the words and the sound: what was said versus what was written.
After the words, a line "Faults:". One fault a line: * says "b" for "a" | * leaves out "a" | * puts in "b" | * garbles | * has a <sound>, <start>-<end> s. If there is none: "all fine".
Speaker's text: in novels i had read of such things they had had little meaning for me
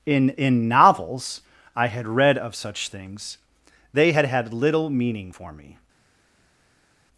in in novels i had read of such things they had had little meaning for me
Faults:
* puts in "in"